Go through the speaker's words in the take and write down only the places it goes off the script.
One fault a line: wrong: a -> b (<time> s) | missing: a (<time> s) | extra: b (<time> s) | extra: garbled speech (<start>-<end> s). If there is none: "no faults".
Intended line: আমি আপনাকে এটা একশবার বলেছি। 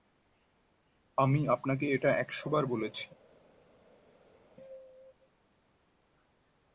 no faults